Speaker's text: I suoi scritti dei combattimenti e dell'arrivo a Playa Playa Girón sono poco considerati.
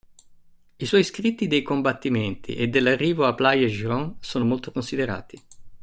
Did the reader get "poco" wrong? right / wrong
wrong